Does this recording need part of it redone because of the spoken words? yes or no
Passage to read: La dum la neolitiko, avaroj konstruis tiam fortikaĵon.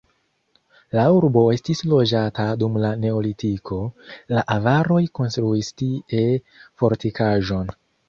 yes